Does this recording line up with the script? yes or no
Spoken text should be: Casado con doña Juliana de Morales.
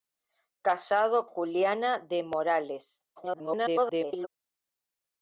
no